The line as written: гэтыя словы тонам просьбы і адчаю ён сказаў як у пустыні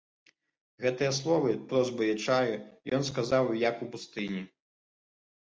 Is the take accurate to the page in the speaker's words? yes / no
no